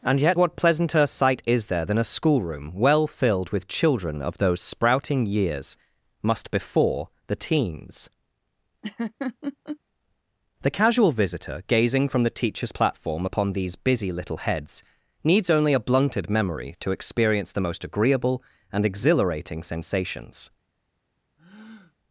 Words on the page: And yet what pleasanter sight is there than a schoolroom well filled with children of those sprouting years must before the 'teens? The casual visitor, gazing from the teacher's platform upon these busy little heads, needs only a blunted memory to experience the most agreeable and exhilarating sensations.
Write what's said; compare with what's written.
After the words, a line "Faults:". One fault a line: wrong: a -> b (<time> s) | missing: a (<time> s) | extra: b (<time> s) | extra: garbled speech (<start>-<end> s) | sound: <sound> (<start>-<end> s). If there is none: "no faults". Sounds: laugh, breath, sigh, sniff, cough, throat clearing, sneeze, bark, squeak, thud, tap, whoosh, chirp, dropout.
And yet what pleasanter sight is there than a schoolroom well filled with children of those sprouting years must before the 'teens? The casual visitor, gazing from the teacher's platform upon these busy little heads, needs only a blunted memory to experience the most agreeable and exhilarating sensations.
Faults:
sound: laugh (8.8-9.8 s)
sound: breath (21.4-22.0 s)